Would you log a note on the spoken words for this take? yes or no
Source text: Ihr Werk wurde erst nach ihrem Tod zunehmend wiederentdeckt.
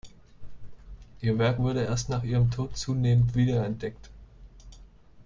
no